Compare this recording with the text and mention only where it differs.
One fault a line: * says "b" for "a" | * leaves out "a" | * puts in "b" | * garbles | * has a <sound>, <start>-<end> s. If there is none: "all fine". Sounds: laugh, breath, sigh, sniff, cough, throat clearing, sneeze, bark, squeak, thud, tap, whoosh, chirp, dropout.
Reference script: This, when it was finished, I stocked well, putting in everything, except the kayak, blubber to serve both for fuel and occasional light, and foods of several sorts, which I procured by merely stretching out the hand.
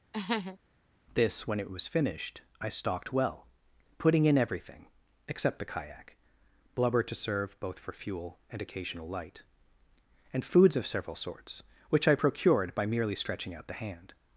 * has a laugh, 0.1-0.6 s